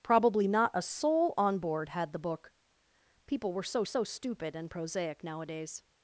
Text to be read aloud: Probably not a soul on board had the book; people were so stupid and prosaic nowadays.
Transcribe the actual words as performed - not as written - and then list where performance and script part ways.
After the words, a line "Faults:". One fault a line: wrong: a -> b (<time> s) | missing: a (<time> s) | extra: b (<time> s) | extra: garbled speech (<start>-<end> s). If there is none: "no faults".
Probably not a soul on board had the book; people were so so stupid and prosaic nowadays.
Faults:
extra: so (3.8 s)